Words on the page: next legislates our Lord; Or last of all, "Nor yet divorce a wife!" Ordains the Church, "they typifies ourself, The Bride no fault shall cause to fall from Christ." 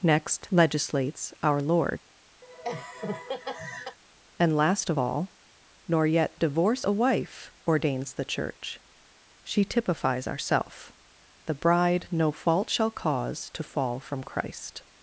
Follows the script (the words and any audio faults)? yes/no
no